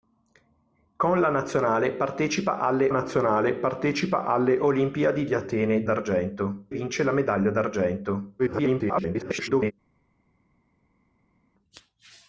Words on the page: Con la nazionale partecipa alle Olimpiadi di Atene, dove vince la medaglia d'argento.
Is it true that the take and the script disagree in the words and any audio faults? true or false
true